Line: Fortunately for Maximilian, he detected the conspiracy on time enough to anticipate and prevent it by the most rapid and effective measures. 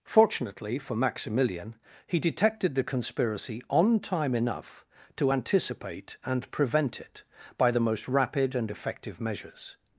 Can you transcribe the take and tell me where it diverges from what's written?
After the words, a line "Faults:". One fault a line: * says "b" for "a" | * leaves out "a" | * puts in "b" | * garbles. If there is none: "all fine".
Fortunately for Maximilian, he detected the conspiracy on time enough to anticipate and prevent it by the most rapid and effective measures.
Faults:
all fine